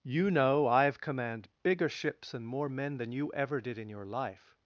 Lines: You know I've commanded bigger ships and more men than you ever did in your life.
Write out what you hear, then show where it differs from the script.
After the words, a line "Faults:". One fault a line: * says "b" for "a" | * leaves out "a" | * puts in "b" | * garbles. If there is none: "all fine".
You know I've command bigger ships and more men than you ever did in your life.
Faults:
* says "command" for "commanded"